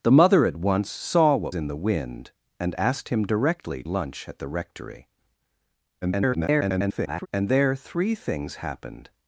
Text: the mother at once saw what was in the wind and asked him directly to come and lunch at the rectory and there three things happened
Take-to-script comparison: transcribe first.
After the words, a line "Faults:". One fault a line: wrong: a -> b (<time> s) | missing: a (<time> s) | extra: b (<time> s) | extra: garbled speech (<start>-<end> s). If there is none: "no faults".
the mother at once saw what in the wind and asked him directly lunch at the rectory [garbled] and there three things happened
Faults:
missing: was (1.6 s)
missing: to come and (3.8 s)
extra: garbled speech (6.0-7.3 s)